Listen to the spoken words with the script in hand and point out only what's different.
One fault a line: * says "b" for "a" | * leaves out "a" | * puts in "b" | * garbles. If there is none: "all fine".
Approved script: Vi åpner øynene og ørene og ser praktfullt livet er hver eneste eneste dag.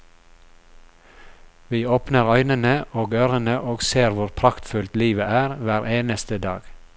* puts in "hvor"
* leaves out "eneste"